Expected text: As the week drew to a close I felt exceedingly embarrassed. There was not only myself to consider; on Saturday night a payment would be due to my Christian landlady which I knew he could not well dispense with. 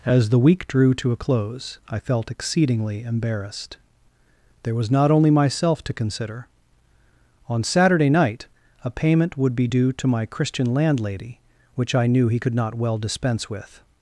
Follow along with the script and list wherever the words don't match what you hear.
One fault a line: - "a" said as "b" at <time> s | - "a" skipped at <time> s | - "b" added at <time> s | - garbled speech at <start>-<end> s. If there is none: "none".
none